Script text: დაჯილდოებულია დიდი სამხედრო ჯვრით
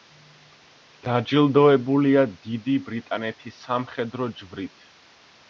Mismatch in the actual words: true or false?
true